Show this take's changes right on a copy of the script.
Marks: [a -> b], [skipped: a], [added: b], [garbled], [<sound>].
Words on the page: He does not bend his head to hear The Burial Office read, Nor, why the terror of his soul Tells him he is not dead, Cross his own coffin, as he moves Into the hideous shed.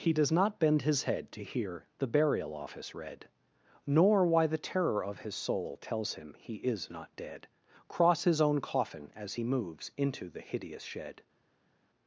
He does not bend his head to hear The Burial Office read, Nor, why the terror of his soul Tells him he is not dead, Cross his own coffin, as he moves Into the hideous shed.